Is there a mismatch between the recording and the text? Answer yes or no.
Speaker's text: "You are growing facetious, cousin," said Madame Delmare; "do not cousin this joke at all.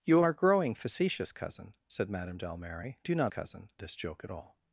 no